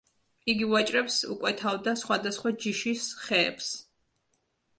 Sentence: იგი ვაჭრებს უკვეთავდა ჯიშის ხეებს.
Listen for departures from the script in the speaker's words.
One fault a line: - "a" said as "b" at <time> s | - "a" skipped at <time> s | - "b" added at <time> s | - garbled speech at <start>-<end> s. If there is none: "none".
- "სხვადასხვა" added at 2.0 s